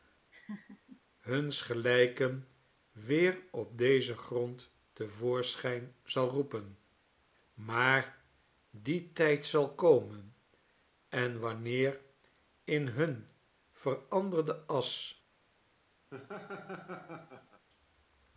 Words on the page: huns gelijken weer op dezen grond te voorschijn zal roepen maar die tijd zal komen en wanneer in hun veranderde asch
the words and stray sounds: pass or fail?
fail